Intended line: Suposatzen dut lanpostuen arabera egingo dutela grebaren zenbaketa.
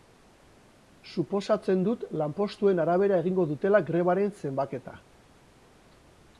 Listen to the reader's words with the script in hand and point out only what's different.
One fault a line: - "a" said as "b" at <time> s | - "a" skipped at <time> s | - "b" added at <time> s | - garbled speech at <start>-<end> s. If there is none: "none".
none